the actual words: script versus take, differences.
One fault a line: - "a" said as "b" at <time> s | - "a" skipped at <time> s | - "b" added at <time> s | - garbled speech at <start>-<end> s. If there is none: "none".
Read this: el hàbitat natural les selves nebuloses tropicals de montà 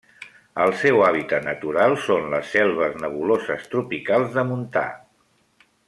- "seu" added at 0.8 s
- "són" added at 2.0 s